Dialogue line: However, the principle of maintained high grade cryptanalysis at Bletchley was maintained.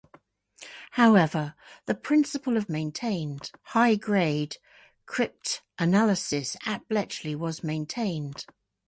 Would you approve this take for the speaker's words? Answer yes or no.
yes